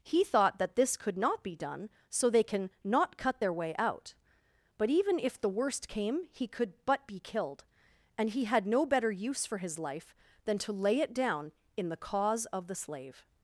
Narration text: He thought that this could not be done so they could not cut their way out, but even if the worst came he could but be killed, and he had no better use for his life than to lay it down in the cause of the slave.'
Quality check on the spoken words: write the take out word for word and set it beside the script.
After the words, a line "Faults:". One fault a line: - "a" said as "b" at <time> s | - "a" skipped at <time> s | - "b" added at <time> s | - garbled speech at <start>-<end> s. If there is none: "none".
He thought that this could not be done so they can not cut their way out, but even if the worst came he could but be killed, and he had no better use for his life than to lay it down in the cause of the slave.'
Faults:
- "could" said as "can" at 2.4 s